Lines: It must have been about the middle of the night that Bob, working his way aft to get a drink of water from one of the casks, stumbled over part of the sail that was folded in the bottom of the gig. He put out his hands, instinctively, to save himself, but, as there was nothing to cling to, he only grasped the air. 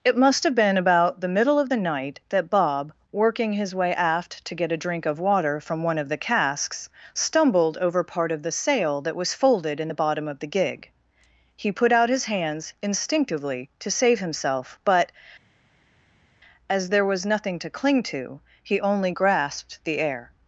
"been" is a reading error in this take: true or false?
false